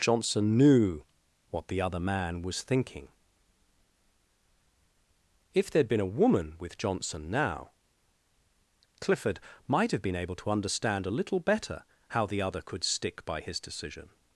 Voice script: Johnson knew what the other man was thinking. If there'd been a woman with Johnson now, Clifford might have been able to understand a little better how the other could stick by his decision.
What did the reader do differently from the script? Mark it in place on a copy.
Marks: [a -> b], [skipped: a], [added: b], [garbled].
Johnson knew what the other man was thinking. If there'd been a woman with Johnson now, Clifford might have been able to understand a little better how the other could stick by his decision.